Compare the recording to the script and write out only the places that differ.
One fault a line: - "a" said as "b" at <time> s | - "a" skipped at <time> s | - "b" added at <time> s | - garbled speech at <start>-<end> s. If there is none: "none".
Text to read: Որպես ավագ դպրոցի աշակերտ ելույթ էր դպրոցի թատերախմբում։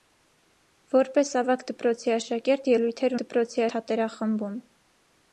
none